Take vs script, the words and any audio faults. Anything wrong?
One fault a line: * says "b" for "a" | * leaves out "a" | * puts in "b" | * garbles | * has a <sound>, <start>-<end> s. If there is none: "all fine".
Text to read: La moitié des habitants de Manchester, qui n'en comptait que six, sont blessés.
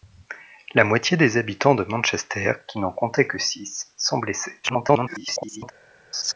* garbles
* has a laugh, 6.1-6.3 s